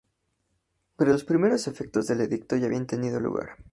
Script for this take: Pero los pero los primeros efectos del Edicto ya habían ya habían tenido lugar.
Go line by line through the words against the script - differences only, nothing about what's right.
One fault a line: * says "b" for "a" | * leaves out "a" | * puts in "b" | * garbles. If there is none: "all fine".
* leaves out "pero los"
* leaves out "ya habían"